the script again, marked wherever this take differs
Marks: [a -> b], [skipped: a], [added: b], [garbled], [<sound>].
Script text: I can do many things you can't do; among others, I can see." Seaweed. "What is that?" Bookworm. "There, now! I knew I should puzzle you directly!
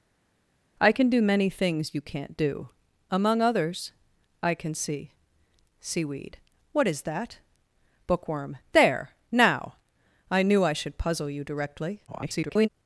I can do many things you can't do; among others, I can see." Seaweed. "What is that?" Bookworm. "There, now! I knew I should puzzle you directly! [garbled]